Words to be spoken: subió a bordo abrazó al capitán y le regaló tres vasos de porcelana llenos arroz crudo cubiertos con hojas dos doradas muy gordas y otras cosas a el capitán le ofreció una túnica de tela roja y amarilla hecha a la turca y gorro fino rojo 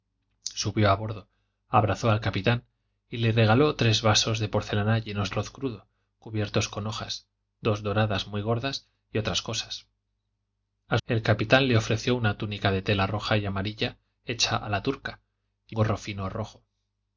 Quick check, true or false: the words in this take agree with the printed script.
true